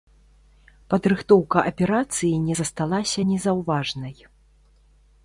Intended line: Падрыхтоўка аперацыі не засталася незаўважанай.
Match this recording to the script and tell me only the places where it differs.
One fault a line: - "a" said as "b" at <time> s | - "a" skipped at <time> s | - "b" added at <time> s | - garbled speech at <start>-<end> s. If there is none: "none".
none